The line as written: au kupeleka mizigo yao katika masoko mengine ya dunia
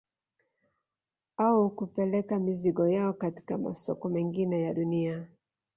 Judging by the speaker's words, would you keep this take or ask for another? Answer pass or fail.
pass